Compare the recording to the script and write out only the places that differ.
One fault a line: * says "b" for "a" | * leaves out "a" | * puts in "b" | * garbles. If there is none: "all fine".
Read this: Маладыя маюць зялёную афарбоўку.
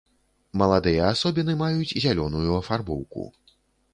* puts in "асобіны"